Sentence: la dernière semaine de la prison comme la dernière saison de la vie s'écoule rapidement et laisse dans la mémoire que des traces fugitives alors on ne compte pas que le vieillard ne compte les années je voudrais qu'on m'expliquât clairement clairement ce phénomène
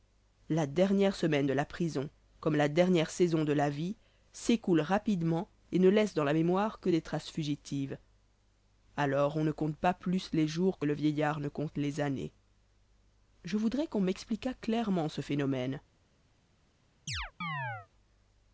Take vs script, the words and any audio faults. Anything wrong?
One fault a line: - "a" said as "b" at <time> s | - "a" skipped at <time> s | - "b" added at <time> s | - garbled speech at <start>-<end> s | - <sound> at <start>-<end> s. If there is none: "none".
- "ne" added at 5.8 s
- "plus les jours" added at 9.9 s
- "clairement" skipped at 15.1 s
- chirp at 17.1-17.9 s